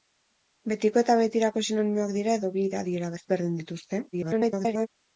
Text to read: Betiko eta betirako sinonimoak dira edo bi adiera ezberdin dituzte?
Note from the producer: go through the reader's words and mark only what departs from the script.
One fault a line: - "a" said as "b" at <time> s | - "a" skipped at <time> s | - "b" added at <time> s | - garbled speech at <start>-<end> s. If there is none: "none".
- garbled speech at 4.1-4.9 s